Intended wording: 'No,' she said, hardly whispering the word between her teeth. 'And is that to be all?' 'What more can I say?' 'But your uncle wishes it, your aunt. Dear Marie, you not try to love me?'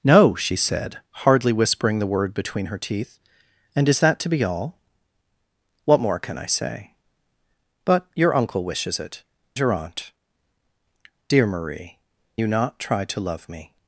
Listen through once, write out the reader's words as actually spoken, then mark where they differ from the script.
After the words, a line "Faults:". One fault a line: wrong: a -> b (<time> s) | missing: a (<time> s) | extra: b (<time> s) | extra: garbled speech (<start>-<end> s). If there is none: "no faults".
'No,' she said, hardly whispering the word between her teeth. 'And is that to be all?' 'What more can I say?' 'But your uncle wishes it, your aunt. Dear Marie, you not try to love me?'
Faults:
no faults